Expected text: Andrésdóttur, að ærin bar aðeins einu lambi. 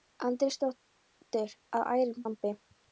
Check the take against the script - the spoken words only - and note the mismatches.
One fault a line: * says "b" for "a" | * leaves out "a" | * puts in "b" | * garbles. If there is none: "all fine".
* leaves out "bar aðeins einu"